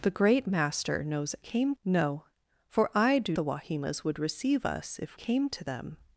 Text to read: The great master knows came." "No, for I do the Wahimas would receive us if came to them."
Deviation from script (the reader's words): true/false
false